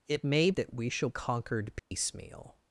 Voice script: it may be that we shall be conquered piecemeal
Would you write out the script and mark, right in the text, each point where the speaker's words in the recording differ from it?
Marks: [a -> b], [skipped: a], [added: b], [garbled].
it may [skipped: be] that we shall [skipped: be] conquered piecemeal